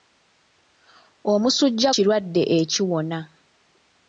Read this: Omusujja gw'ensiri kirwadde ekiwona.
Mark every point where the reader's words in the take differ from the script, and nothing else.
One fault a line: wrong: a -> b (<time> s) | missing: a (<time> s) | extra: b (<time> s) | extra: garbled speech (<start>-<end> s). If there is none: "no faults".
missing: gw'ensiri (1.9 s)